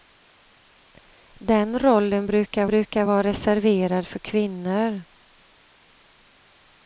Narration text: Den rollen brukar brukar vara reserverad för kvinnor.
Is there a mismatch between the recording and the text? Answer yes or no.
no